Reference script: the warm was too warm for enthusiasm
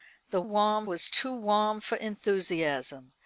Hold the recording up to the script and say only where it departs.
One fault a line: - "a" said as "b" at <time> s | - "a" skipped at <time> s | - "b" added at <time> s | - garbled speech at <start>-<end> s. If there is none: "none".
none